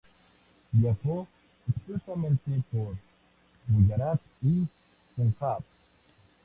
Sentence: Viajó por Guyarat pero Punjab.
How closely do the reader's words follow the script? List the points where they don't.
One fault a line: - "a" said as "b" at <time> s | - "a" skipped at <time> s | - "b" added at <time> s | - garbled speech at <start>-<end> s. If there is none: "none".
- "extensamente" added at 1.7 s
- "pero" said as "y" at 4.4 s